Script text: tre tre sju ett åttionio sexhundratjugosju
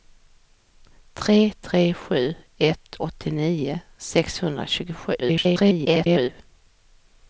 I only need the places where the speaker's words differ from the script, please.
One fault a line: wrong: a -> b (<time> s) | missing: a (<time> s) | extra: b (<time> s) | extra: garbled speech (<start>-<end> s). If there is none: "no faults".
extra: garbled speech (5.2-6.3 s)